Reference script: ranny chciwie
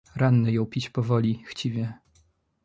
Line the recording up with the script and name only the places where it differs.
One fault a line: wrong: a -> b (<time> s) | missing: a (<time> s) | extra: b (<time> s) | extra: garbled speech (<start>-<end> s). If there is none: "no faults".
extra: jął pić powoli (0.5 s)